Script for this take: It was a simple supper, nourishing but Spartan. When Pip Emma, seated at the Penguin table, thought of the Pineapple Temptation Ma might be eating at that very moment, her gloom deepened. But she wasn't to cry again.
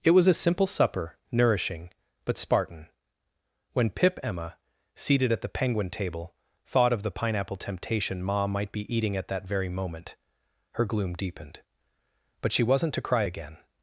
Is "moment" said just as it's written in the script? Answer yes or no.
yes